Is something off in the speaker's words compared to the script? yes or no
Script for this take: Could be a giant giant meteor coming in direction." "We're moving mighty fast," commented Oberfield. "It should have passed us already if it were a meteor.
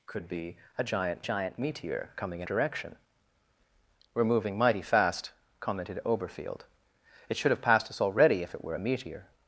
no